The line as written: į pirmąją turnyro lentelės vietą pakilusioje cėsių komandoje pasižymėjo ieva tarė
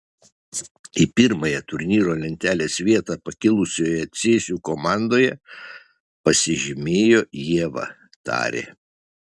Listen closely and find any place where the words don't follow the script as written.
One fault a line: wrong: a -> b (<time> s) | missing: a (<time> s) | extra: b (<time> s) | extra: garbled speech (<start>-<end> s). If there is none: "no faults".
no faults